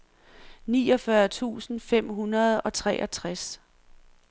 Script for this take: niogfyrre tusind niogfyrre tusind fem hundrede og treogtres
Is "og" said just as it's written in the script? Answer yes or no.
yes